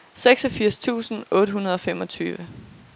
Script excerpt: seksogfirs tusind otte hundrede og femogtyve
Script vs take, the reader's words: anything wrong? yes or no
no